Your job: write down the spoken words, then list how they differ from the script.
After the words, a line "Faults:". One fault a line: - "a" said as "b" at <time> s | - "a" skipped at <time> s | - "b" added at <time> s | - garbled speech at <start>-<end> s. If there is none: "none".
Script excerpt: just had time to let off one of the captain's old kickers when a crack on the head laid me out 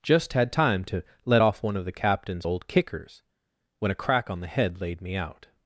just had time to let off one of the captain's old kickers when a crack on the head laid me out
Faults:
none